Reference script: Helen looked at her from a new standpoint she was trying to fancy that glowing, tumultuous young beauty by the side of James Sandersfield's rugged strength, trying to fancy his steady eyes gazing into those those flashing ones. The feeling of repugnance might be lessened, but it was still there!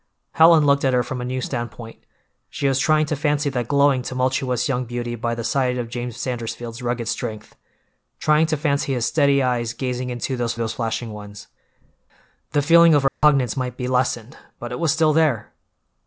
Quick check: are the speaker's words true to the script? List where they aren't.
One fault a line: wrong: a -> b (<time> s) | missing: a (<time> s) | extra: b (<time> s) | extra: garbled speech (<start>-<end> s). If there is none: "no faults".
no faults